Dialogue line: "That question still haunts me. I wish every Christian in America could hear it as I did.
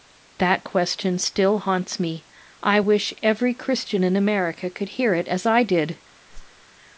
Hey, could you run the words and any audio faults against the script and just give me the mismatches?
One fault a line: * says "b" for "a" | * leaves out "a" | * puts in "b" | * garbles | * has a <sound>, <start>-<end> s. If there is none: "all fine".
* has a whoosh, 6.3-6.6 s